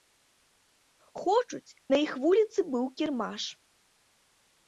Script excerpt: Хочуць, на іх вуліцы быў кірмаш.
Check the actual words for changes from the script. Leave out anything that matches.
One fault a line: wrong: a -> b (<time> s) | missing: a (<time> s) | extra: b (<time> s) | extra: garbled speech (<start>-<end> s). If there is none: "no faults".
no faults